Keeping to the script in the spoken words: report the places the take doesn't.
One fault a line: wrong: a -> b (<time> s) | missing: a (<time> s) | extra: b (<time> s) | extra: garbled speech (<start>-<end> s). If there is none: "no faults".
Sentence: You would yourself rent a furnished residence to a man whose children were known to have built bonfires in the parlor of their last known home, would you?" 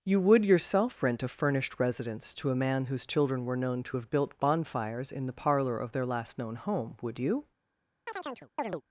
no faults